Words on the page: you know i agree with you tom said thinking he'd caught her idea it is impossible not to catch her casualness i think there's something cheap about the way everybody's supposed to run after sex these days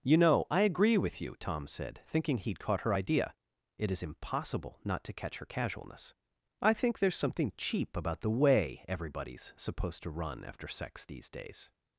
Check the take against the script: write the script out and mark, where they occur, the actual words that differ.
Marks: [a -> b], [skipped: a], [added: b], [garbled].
you know i agree with you tom said thinking he'd caught her idea it is impossible not to catch her casualness i think there's something cheap about the way everybody's supposed to run after sex these days